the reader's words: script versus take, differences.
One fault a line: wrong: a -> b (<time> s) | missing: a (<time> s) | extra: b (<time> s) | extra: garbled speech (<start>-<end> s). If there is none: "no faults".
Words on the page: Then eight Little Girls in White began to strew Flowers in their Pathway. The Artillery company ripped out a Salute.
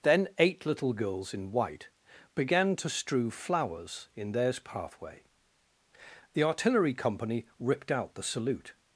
wrong: their -> theirs (4.3 s)
wrong: a -> the (8.2 s)